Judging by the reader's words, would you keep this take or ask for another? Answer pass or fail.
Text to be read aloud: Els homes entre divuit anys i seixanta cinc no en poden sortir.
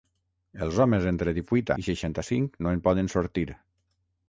fail